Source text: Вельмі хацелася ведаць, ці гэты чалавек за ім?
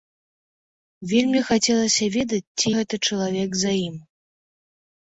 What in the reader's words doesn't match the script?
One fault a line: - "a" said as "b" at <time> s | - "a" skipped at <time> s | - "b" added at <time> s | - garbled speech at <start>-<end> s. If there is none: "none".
none